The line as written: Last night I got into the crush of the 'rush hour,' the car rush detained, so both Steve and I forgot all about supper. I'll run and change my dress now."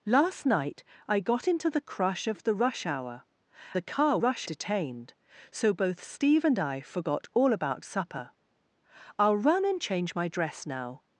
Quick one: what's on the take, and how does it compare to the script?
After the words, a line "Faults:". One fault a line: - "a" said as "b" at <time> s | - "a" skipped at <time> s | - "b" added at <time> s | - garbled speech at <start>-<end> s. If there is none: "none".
Last night I got into the crush of the 'rush hour,' the car rush detained, so both Steve and I forgot all about supper. I'll run and change my dress now."
Faults:
none